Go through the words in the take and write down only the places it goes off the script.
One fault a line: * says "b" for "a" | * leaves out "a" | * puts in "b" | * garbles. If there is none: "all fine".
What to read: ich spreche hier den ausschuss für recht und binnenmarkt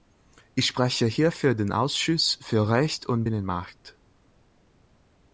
* puts in "für"